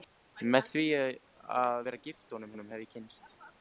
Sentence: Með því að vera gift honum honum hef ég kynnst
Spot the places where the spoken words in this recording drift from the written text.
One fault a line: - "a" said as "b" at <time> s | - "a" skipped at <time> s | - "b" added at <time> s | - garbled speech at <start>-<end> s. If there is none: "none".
none